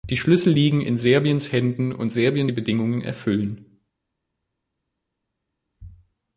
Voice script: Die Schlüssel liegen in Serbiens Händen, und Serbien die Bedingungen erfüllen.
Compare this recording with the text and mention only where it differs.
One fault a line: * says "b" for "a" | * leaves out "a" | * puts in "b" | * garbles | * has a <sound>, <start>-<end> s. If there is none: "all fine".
all fine